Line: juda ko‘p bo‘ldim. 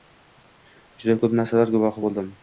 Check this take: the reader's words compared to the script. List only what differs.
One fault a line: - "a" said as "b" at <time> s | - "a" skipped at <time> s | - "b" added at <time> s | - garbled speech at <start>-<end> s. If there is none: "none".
- "narsalar guvohi" added at 1.4 s